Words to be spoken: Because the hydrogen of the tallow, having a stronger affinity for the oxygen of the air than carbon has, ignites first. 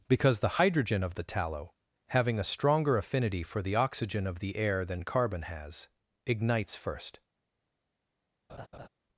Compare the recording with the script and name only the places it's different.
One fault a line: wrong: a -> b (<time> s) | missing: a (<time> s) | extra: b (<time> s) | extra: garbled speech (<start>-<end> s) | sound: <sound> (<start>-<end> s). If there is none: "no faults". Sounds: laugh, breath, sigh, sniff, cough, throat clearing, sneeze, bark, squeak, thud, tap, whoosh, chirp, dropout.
sound: laugh (8.5-8.9 s)